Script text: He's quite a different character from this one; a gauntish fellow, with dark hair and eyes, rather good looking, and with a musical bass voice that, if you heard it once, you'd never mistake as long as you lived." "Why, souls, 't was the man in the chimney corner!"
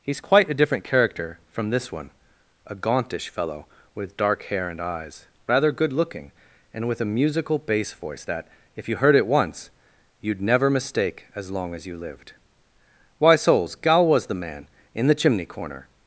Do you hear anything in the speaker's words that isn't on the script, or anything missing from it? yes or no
yes